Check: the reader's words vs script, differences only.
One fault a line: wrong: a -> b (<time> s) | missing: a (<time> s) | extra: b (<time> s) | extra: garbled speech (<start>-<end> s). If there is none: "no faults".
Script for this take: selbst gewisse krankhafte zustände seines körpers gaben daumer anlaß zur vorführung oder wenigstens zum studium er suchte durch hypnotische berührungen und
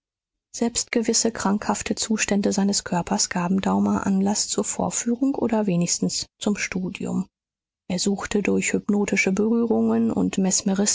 no faults